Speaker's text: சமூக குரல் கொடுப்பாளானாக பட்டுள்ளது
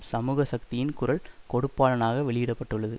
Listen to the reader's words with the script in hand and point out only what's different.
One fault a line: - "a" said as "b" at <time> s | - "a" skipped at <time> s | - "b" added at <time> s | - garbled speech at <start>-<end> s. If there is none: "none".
- "சக்தியின்" added at 0.4 s
- "வெளியிட" added at 2.2 s